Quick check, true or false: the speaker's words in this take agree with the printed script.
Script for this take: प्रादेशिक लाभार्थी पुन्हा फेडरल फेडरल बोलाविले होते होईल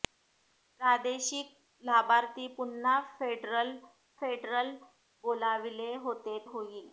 true